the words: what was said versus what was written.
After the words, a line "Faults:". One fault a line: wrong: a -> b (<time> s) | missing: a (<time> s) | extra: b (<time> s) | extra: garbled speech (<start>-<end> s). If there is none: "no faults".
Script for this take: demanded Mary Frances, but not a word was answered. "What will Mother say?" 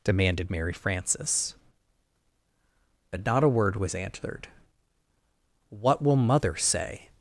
demanded Mary Frances, but not a word was answered. "What will Mother say?"
Faults:
no faults